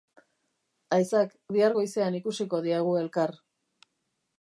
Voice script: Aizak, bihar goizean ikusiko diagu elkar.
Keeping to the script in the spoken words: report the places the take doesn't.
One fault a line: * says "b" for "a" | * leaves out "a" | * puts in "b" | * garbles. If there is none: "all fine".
all fine